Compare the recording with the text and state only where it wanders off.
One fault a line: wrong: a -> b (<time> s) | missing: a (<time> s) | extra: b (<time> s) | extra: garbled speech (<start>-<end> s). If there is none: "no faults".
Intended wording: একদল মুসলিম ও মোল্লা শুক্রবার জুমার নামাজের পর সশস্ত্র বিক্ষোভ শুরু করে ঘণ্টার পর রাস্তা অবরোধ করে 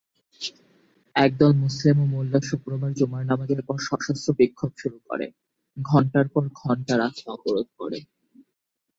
extra: ঘণ্টা (6.6 s)